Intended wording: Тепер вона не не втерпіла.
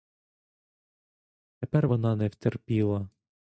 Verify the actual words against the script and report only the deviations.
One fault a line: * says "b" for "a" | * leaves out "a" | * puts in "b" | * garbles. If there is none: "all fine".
* leaves out "не"